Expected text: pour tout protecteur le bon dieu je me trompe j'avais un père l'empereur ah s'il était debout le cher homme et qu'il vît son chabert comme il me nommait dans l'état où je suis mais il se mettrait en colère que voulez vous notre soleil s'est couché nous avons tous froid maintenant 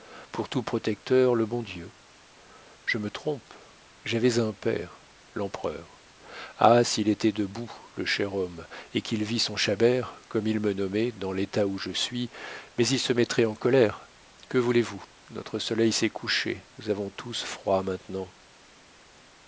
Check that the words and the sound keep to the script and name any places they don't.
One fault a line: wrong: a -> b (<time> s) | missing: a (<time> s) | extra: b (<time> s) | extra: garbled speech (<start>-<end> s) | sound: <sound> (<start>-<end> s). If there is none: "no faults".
no faults